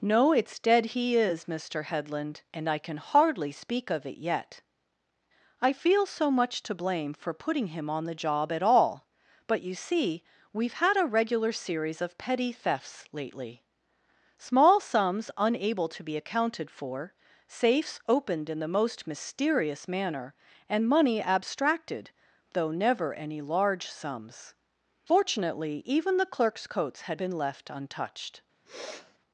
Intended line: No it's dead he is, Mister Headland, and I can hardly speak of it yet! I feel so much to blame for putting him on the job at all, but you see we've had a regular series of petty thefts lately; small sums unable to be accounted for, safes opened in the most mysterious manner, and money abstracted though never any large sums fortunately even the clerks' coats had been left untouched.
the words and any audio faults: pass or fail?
fail